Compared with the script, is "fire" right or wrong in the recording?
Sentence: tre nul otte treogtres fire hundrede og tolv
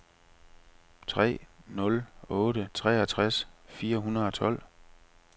right